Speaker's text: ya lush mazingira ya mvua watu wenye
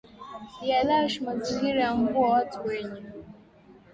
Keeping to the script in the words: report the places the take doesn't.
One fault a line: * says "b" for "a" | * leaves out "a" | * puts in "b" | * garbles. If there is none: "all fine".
all fine